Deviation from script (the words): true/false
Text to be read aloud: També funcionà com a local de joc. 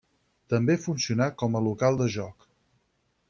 false